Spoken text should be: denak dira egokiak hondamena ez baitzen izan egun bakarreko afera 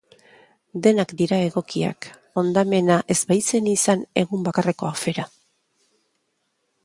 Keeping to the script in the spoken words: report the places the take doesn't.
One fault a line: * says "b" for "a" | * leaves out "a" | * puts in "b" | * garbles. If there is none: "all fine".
all fine